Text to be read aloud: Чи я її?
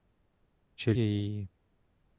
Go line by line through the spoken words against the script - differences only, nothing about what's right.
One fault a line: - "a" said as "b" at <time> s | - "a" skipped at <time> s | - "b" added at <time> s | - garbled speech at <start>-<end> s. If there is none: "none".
none